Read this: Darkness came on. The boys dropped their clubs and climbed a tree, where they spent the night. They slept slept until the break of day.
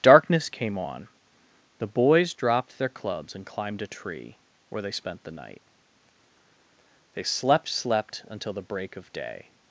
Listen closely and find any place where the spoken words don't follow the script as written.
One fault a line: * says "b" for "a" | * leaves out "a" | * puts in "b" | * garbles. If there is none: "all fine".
all fine